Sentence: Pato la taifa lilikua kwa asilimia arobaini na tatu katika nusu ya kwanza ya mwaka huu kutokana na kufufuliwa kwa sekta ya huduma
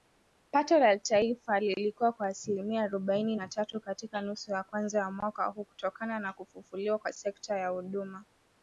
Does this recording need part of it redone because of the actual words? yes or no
no